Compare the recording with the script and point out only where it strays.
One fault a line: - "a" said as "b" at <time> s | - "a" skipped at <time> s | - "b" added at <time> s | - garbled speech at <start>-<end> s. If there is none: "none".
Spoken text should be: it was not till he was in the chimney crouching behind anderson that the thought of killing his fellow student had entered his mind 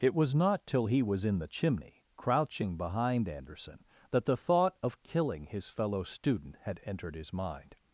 none